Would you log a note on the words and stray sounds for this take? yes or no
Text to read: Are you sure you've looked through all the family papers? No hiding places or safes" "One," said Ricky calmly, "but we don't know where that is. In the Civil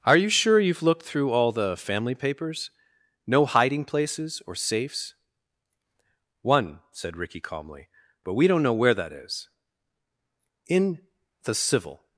no